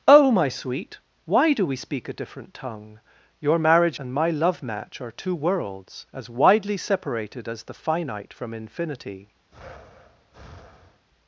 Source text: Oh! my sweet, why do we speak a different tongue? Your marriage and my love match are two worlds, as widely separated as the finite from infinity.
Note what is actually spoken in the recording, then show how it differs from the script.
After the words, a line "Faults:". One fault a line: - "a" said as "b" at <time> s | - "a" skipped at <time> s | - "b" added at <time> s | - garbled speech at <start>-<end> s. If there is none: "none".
Oh! my sweet, why do we speak a different tongue? Your marriage and my love match are two worlds, as widely separated as the finite from infinity.
Faults:
none